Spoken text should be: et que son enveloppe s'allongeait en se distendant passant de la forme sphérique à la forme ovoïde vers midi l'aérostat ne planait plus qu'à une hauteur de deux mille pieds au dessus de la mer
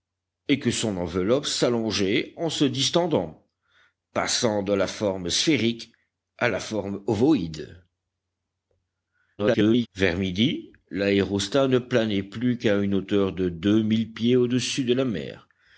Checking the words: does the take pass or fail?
fail